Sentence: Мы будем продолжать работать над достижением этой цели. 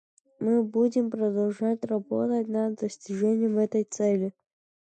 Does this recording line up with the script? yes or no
yes